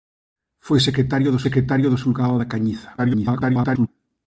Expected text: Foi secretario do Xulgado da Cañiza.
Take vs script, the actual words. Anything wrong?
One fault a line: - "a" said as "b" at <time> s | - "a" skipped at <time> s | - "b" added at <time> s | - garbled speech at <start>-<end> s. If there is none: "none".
- "secretario do" added at 1.5 s
- garbled speech at 3.0-3.9 s